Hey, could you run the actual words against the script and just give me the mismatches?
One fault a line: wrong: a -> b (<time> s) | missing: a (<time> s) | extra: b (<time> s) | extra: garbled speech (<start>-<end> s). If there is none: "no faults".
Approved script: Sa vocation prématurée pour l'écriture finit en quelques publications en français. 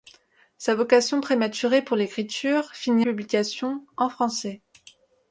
missing: en quelques (3.0 s)